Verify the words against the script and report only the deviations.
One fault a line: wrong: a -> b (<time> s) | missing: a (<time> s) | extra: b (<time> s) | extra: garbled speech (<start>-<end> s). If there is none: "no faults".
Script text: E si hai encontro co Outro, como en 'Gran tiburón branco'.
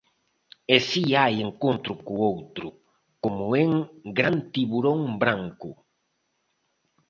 no faults